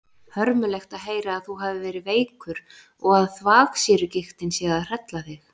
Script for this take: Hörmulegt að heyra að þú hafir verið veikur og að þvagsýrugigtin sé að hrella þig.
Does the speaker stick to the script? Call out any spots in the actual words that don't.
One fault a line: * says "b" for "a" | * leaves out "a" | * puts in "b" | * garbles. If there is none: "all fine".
all fine